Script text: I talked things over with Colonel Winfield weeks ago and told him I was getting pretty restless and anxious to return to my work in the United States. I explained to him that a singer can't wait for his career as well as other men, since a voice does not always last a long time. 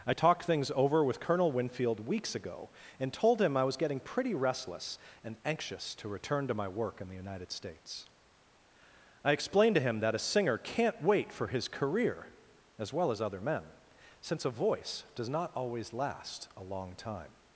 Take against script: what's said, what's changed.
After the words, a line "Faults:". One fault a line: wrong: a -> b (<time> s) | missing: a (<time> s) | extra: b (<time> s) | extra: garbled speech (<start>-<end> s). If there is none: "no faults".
I talked things over with Colonel Winfield weeks ago and told him I was getting pretty restless and anxious to return to my work in the United States. I explained to him that a singer can't wait for his career as well as other men, since a voice does not always last a long time.
Faults:
no faults